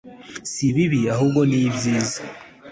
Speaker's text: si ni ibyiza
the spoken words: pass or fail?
fail